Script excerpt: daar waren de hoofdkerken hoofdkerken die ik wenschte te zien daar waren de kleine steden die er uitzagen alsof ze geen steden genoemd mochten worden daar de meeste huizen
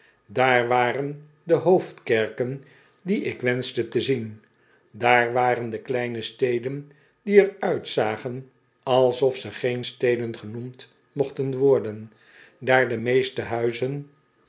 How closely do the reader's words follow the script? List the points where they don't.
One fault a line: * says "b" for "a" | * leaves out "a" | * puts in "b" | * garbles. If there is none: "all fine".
* leaves out "hoofdkerken"